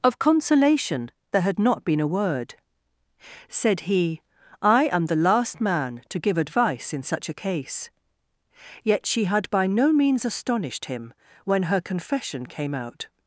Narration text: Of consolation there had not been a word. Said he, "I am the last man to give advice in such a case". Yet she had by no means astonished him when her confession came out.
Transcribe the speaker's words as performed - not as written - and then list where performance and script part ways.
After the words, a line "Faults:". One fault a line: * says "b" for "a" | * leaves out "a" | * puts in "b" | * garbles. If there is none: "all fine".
Of consolation there had not been a word. Said he, "I am the last man to give advice in such a case". Yet she had by no means astonished him when her confession came out.
Faults:
all fine